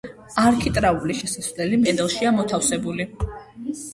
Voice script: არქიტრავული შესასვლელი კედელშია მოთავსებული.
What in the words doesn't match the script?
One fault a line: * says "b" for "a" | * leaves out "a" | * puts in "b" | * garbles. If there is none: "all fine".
all fine